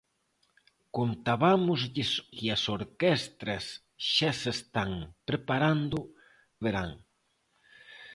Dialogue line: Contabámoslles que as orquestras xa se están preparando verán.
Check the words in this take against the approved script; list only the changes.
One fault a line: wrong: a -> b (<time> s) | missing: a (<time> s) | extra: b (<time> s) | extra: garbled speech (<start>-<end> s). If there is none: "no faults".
no faults